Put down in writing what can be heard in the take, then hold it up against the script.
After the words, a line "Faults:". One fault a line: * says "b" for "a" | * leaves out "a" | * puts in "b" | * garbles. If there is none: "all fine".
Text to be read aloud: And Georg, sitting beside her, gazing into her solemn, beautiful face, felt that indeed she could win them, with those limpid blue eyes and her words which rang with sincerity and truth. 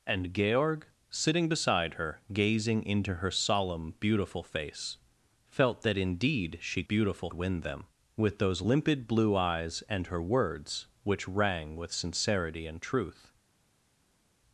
And Georg, sitting beside her, gazing into her solemn, beautiful face, felt that indeed she beautiful win them, with those limpid blue eyes and her words which rang with sincerity and truth.
Faults:
* says "beautiful" for "could"